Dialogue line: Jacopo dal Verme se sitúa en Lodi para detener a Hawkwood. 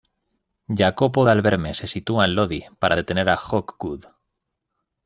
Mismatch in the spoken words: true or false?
false